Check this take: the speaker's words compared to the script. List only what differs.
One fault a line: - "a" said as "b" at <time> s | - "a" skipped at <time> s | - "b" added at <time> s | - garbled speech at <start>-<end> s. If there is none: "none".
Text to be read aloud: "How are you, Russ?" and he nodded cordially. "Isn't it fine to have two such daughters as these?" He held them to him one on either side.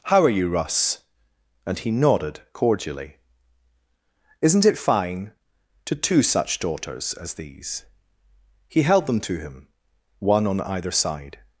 - "have" skipped at 6.0 s